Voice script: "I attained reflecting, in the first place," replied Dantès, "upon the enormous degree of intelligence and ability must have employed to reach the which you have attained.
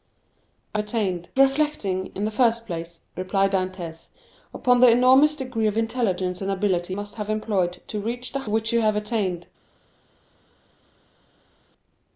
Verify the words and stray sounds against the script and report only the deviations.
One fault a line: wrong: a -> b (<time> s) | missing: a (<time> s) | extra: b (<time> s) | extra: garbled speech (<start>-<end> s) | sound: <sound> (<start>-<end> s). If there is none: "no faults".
no faults